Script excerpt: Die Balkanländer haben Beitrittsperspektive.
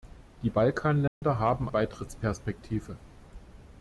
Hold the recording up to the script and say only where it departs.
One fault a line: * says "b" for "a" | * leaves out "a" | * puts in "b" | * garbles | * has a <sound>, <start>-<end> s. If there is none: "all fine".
* has a dropout, 1.1-1.2 s